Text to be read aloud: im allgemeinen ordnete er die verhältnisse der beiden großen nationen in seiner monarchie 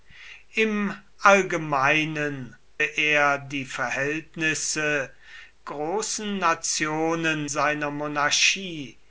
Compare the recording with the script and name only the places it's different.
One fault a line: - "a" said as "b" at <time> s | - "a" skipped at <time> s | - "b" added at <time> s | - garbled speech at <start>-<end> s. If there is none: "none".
- "ordnete" skipped at 2.6 s
- "der beiden" skipped at 5.1 s
- "in" skipped at 7.5 s